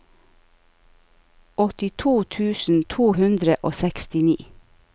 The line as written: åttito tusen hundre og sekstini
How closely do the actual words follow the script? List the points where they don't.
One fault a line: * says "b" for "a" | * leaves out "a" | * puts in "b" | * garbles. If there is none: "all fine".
* puts in "to"